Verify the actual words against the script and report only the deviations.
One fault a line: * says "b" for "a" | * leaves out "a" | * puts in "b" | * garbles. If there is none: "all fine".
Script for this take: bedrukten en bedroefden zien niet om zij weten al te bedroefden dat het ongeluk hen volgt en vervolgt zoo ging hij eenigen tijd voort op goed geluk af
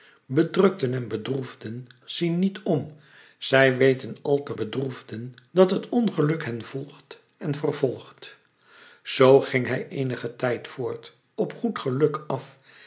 all fine